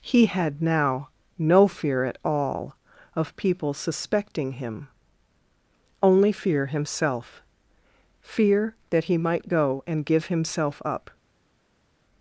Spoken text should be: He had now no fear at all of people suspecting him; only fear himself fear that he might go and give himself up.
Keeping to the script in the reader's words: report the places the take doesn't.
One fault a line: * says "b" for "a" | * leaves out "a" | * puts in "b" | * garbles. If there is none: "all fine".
all fine